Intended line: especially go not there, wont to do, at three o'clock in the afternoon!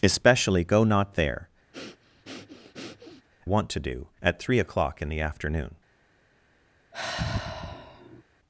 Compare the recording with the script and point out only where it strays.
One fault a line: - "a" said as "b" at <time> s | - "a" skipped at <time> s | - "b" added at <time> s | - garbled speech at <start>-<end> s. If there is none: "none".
none